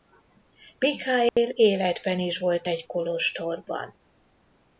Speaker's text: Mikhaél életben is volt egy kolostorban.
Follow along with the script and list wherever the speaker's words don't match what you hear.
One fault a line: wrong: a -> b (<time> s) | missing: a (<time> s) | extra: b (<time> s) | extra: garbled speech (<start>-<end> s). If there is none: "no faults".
no faults